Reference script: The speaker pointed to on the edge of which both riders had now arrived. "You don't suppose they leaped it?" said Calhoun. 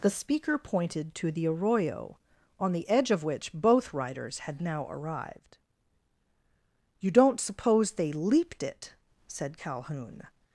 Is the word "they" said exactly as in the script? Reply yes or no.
yes